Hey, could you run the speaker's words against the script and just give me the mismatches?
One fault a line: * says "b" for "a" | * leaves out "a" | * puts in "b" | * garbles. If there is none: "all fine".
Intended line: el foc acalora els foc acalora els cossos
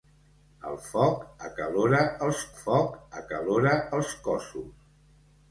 all fine